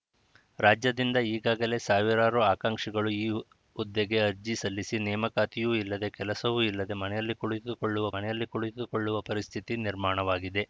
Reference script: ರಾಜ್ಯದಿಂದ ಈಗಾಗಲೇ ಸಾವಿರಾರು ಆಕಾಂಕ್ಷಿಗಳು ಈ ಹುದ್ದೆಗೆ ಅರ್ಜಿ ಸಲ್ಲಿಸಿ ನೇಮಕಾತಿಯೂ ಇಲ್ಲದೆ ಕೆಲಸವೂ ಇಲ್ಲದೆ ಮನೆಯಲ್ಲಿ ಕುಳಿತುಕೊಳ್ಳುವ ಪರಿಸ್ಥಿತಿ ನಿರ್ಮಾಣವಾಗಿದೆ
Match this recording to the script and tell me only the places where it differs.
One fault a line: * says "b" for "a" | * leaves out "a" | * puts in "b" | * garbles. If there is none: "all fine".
* puts in "ಮನೆಯಲ್ಲಿ ಕುಳಿತುಕೊಳ್ಳುವ"